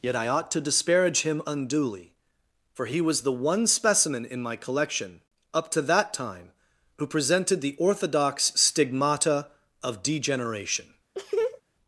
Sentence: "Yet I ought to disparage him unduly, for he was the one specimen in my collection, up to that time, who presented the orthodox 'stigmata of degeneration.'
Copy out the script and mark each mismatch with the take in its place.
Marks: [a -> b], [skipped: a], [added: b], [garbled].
"Yet I ought to disparage him unduly, for he was the one specimen in my collection, up to that time, who presented the orthodox 'stigmata of degeneration.'